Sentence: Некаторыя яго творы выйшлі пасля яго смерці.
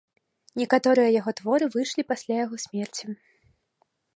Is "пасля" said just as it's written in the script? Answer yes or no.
yes